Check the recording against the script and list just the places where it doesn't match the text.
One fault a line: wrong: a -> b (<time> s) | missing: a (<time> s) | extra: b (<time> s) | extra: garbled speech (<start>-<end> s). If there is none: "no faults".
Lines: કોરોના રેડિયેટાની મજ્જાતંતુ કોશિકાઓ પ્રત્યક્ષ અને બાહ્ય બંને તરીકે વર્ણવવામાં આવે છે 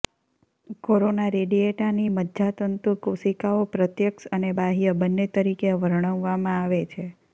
no faults